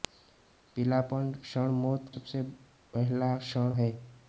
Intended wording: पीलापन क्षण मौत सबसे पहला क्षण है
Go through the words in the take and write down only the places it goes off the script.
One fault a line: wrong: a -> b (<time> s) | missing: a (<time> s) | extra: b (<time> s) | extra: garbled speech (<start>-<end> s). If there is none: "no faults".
no faults